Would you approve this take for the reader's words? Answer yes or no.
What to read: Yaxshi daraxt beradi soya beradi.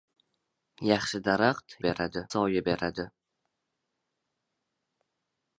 yes